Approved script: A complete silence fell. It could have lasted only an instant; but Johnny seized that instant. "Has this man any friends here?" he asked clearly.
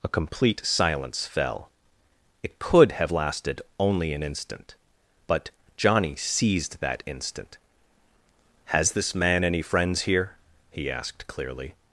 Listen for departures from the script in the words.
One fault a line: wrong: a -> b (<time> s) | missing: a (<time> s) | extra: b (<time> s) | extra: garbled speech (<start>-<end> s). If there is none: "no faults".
no faults